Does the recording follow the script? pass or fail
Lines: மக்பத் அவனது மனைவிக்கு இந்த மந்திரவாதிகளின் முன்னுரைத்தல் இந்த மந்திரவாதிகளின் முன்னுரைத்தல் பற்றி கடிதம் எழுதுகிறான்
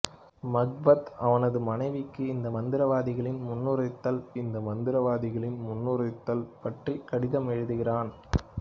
pass